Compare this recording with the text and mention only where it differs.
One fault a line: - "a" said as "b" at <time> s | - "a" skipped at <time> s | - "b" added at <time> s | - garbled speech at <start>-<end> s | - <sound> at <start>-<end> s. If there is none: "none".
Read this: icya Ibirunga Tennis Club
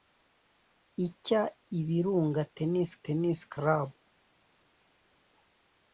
- "Tennis" added at 3.0 s